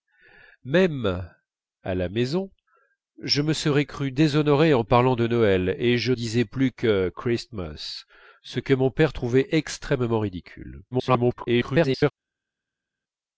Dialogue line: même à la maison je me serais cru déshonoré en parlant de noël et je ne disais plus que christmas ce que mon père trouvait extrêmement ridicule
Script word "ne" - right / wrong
wrong